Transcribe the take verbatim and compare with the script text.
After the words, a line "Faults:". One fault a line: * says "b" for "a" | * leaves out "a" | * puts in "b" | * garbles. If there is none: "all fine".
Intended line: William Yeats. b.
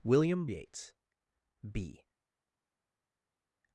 William Yeats. b.
Faults:
all fine